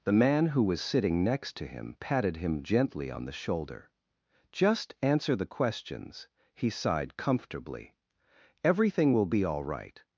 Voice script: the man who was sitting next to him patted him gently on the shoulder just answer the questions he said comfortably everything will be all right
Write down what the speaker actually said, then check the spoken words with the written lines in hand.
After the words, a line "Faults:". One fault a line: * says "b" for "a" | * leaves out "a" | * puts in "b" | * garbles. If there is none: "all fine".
the man who was sitting next to him patted him gently on the shoulder just answer the questions he sighed comfortably everything will be all right
Faults:
* says "sighed" for "said"